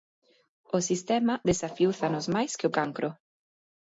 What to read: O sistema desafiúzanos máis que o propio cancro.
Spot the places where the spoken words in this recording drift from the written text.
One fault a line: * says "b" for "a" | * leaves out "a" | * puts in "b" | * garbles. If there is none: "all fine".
* leaves out "propio"